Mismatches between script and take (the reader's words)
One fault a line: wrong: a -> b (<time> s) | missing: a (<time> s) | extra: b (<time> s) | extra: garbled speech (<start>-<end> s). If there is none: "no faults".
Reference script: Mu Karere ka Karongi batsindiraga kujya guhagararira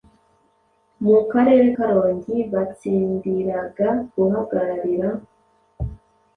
missing: ka (1.7 s)
missing: kujya (3.9 s)